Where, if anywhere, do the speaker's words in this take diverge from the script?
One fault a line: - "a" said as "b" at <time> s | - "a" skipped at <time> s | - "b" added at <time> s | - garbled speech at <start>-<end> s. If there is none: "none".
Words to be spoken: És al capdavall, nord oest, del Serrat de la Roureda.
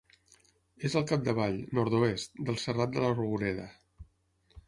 none